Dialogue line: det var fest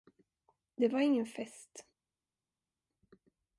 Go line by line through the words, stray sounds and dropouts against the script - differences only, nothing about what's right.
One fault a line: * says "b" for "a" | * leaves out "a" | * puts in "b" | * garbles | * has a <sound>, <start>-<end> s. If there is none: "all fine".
* puts in "ingen"